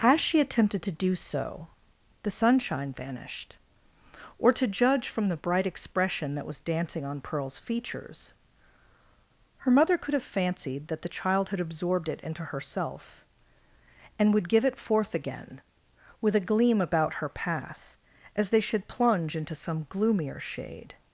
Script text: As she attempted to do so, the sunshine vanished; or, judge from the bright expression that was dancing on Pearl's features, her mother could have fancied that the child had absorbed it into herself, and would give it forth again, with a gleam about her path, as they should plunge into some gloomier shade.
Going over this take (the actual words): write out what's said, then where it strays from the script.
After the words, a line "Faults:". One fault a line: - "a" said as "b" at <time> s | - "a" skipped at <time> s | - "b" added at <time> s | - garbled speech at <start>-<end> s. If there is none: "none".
As she attempted to do so, the sunshine vanished; or, to judge from the bright expression that was dancing on Pearl's features, her mother could have fancied that the child had absorbed it into herself, and would give it forth again, with a gleam about her path, as they should plunge into some gloomier shade.
Faults:
- "to" added at 4.5 s